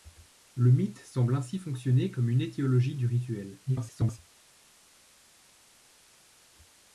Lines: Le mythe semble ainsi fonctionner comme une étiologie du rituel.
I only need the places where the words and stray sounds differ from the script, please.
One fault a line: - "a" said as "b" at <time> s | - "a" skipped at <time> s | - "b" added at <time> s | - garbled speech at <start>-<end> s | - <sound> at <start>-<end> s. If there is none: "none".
- garbled speech at 3.7-4.2 s